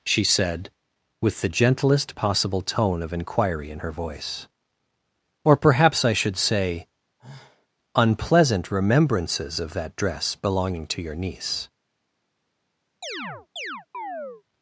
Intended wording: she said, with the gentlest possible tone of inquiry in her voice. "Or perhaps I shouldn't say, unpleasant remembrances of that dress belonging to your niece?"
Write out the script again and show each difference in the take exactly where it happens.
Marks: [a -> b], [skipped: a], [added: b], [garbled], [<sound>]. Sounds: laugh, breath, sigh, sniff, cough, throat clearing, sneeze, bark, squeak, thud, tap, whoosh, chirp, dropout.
she said, with the gentlest possible tone of inquiry in her voice. "Or perhaps I [shouldn't -> should] say, [sigh] unpleasant remembrances of that dress belonging to your niece?" [chirp]